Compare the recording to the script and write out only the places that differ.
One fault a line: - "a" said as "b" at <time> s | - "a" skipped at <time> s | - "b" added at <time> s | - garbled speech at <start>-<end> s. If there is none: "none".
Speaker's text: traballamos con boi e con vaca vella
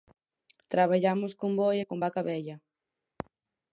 none